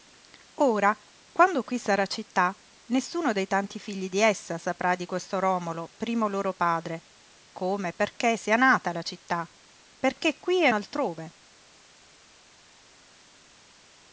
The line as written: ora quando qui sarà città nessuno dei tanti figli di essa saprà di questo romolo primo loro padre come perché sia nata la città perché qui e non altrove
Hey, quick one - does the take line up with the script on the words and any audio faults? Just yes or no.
no